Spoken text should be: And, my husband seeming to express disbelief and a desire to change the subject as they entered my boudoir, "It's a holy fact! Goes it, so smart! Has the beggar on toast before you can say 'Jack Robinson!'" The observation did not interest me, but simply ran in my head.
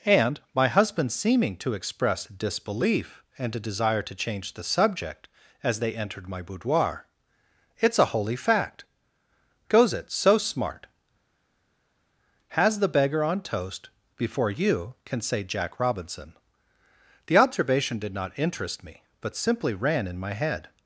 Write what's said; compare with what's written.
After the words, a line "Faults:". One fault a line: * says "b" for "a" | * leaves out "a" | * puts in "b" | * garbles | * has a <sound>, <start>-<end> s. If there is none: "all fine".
And, my husband seeming to express disbelief and a desire to change the subject as they entered my boudoir, "It's a holy fact! Goes it, so smart! Has the beggar on toast before you can say 'Jack Robinson!'" The observation did not interest me, but simply ran in my head.
Faults:
all fine